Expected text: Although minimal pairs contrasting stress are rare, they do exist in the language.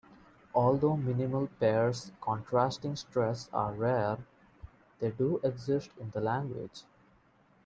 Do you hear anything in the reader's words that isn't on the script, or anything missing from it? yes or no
no